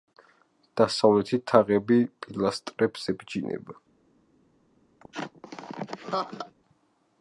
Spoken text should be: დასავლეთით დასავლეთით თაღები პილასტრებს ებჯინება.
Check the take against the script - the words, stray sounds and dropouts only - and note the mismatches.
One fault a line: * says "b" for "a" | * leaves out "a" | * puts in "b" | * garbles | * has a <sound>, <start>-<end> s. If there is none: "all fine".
* leaves out "დასავლეთით"
* has a laugh, 5.0-6.5 s